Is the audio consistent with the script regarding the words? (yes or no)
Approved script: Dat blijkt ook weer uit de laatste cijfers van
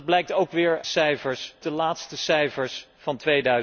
no